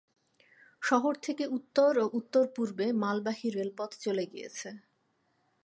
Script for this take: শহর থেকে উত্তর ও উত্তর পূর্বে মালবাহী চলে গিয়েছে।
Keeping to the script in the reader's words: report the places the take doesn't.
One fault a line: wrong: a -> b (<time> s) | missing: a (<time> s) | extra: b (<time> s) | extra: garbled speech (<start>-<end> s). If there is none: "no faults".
extra: রেলপথ (3.5 s)